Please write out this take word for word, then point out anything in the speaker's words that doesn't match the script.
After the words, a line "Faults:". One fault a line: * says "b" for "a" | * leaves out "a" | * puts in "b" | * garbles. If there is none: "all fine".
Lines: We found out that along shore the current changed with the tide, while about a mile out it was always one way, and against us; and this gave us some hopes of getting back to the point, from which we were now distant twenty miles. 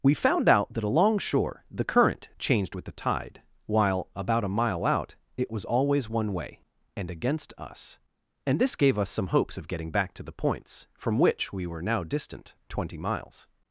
We found out that along shore the current changed with the tide, while about a mile out it was always one way, and against us; and this gave us some hopes of getting back to the points, from which we were now distant twenty miles.
Faults:
* says "points" for "point"